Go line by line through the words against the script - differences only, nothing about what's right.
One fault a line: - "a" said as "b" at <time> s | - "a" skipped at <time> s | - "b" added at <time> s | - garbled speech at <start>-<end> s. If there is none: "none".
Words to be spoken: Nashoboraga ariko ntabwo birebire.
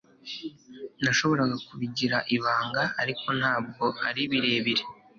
- "kubigira ibanga" added at 1.7 s
- "ari" added at 4.1 s